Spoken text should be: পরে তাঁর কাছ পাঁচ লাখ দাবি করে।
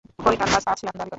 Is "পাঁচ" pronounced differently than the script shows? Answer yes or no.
no